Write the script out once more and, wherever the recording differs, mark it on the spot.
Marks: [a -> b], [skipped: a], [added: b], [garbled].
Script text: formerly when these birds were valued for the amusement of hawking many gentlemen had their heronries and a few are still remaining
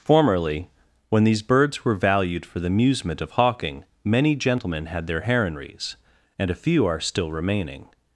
formerly when these birds were valued for the amusement of hawking many gentlemen had their heronries and a few are still remaining